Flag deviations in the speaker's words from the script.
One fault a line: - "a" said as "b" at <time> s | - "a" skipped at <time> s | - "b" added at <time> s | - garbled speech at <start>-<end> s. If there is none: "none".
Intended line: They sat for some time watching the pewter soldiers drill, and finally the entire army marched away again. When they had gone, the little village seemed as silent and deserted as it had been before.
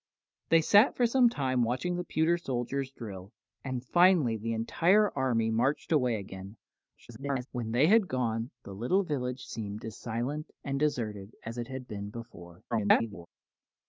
- garbled speech at 7.0-7.5 s
- garbled speech at 12.7-13.3 s